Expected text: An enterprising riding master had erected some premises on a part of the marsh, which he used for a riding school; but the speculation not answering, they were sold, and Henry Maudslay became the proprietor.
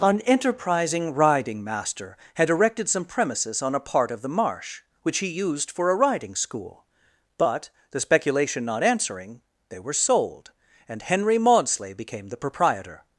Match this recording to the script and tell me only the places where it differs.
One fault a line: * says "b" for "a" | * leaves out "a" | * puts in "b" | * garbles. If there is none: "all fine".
all fine